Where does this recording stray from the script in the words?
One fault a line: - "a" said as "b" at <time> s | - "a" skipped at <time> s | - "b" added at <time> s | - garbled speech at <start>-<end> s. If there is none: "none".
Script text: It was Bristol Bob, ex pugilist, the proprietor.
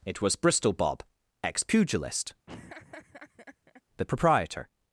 none